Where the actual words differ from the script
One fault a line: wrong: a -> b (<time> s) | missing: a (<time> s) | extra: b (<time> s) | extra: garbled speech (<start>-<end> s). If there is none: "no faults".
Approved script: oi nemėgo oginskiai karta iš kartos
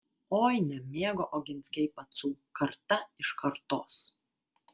extra: pacų (2.0 s)